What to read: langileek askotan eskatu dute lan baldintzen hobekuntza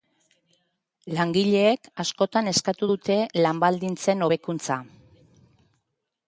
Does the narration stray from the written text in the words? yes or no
no